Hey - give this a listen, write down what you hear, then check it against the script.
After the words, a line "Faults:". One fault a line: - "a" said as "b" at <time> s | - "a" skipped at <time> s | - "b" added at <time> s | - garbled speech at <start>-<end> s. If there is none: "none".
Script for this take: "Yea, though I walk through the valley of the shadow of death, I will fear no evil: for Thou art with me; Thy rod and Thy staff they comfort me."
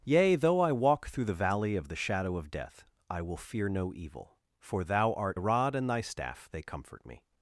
"Yea, though I walk through the valley of the shadow of death, I will fear no evil: for Thou art rod and Thy staff they comfort me."
Faults:
- "with me Thy" skipped at 5.4 s